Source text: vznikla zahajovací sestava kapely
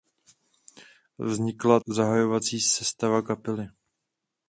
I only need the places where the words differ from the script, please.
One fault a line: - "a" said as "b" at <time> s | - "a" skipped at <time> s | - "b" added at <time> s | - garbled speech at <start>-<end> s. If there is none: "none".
none